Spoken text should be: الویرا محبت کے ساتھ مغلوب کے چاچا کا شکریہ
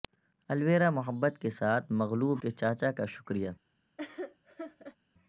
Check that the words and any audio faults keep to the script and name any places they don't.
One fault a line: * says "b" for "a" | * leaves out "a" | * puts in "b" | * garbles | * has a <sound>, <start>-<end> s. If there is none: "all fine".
* has a laugh, 4.0-5.0 s